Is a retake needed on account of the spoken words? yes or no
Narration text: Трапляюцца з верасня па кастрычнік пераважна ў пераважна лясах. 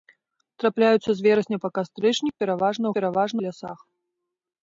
no